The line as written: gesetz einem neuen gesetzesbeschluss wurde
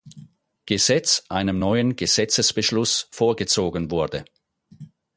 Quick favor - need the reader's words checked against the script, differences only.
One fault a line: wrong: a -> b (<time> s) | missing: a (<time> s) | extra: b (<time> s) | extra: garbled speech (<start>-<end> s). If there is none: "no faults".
extra: vorgezogen (3.1 s)